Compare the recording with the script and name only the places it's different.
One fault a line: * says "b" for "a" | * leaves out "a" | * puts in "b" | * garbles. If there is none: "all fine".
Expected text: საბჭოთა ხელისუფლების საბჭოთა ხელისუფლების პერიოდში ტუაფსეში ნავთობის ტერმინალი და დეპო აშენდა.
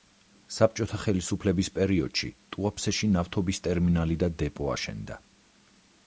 * leaves out "საბჭოთა ხელისუფლების"